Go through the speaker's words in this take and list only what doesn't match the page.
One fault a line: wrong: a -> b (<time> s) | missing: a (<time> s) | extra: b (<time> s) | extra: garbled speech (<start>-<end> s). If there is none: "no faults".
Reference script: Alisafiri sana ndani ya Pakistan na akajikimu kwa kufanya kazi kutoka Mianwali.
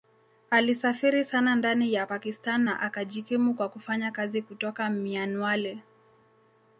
no faults